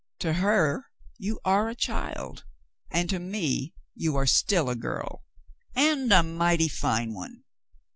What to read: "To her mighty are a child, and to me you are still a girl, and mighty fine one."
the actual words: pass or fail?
fail